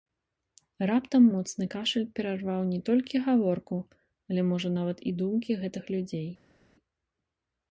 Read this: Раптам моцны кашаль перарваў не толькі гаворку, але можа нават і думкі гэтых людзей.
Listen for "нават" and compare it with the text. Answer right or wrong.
right